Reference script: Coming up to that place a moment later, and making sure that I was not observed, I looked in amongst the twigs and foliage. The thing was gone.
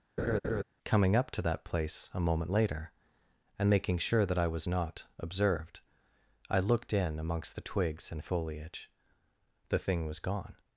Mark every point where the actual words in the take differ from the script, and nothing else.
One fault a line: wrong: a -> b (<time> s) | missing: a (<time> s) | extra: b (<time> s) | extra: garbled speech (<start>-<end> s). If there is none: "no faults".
no faults